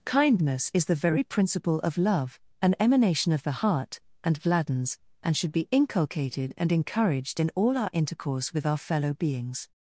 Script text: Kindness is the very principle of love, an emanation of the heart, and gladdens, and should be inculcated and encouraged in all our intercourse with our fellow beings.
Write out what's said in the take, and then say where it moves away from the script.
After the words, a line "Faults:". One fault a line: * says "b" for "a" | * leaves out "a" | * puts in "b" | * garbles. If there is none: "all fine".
Kindness is the very principle of love, an emanation of the heart, and gladdens, and should be inculcated and encouraged in all our intercourse with our fellow beings.
Faults:
all fine